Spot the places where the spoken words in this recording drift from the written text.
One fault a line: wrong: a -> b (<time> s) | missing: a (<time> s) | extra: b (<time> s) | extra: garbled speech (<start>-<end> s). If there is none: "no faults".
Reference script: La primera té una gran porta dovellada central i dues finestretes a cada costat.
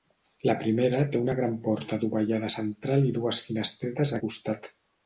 missing: cada (4.2 s)